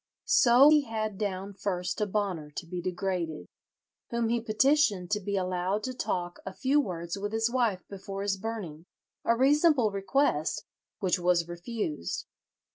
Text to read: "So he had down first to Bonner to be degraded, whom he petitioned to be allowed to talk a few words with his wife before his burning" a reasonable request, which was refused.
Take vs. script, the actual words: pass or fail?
pass